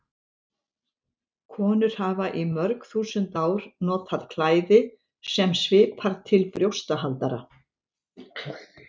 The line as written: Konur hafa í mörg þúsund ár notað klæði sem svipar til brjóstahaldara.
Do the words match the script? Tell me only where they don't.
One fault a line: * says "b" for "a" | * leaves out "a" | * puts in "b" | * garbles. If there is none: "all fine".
all fine